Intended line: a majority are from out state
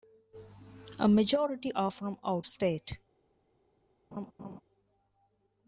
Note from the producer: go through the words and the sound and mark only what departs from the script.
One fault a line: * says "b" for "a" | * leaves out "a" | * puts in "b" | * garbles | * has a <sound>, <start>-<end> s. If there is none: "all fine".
* has a laugh, 4.1-4.6 s